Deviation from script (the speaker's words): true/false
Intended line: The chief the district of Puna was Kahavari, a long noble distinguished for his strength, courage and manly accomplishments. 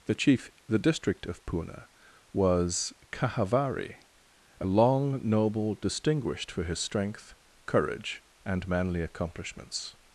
false